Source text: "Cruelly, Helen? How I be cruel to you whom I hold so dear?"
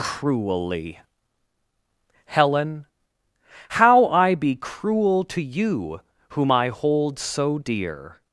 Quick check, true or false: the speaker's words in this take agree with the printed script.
true